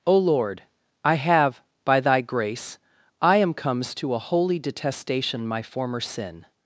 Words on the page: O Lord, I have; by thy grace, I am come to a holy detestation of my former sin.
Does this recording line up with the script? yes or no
no